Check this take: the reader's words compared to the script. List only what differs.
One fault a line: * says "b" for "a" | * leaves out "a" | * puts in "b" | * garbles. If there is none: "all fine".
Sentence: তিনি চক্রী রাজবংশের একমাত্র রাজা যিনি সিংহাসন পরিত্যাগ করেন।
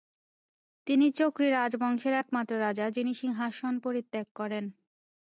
all fine